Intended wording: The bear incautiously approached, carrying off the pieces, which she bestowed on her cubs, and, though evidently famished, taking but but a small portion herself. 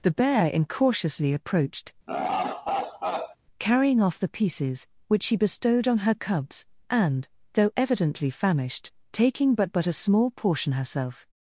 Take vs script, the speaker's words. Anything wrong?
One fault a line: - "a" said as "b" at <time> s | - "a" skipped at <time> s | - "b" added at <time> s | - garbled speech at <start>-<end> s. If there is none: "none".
none